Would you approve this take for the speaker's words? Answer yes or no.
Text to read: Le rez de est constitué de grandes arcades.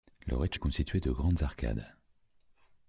yes